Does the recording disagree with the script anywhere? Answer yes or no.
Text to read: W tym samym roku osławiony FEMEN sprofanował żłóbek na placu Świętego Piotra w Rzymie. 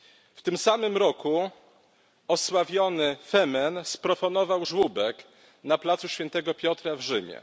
no